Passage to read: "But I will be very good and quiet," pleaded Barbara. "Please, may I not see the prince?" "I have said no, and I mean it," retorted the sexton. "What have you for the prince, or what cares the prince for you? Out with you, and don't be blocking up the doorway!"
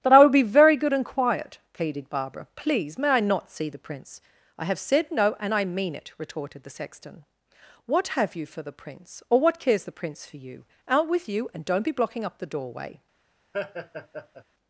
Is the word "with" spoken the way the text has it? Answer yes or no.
yes